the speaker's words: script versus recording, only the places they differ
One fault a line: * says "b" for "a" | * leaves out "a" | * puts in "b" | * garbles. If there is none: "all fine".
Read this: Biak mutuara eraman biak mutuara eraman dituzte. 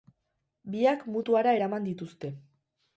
* leaves out "biak mutuara eraman"